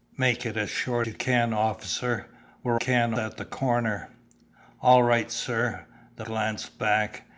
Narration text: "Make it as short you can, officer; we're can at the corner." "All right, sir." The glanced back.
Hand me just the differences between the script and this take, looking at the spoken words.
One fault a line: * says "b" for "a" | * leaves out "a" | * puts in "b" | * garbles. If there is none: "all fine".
all fine